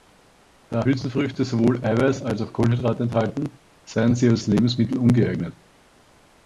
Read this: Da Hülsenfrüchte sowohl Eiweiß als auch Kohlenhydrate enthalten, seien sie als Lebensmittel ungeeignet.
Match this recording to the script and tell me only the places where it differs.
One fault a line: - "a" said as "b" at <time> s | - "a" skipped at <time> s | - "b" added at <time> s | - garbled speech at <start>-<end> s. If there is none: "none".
none